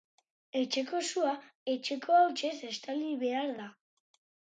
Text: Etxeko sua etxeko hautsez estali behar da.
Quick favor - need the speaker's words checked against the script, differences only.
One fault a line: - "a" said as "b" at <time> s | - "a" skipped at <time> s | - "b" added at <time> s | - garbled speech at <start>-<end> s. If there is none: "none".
none